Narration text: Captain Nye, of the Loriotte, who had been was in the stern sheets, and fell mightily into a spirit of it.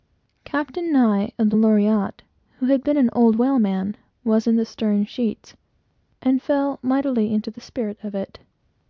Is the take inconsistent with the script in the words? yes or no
yes